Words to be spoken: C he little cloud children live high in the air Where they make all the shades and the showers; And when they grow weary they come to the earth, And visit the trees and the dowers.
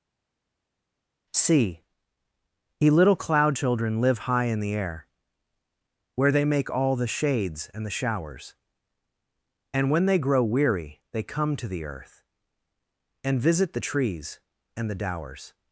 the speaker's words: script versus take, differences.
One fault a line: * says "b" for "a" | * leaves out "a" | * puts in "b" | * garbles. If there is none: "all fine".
all fine